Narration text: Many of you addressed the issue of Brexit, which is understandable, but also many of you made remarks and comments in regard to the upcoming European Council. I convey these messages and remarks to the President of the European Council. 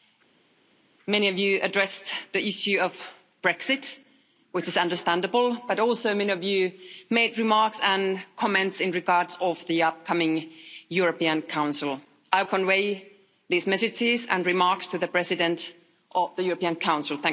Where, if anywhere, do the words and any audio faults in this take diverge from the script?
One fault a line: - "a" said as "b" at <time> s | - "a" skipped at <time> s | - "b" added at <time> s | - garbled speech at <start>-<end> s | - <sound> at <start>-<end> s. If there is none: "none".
none